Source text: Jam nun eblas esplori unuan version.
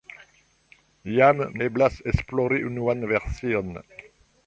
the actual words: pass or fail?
fail